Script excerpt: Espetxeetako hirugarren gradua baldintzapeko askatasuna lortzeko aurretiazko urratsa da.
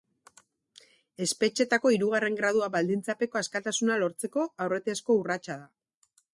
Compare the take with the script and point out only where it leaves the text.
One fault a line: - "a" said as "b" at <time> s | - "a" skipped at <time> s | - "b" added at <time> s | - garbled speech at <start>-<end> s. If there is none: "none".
none